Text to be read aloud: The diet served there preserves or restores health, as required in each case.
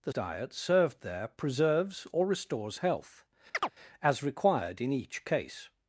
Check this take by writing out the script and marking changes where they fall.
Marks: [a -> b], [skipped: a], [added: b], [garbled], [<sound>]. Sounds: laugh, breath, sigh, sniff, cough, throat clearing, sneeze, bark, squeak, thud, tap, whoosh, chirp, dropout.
The diet served there preserves or restores health, [chirp] as required in each case.